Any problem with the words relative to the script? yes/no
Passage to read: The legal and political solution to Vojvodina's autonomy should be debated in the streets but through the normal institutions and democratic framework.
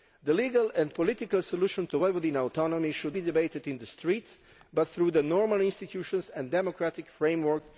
no